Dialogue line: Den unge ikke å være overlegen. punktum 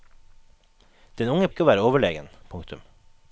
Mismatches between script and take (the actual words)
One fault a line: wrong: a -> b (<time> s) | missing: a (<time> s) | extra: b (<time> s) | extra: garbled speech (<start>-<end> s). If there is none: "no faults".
no faults